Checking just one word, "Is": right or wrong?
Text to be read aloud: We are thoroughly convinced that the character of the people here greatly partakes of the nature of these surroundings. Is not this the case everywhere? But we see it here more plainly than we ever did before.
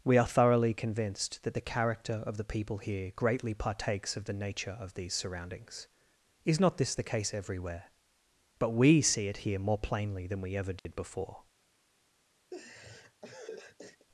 right